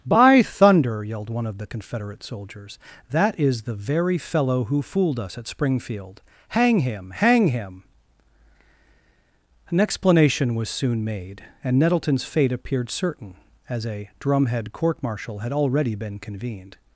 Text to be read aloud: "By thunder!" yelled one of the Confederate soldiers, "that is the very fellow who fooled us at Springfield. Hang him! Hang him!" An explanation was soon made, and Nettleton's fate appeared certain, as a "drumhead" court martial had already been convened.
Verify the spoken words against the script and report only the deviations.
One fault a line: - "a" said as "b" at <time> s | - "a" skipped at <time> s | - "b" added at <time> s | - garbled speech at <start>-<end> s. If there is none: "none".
none